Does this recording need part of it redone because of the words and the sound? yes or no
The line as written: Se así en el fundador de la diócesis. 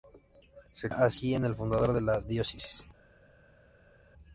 no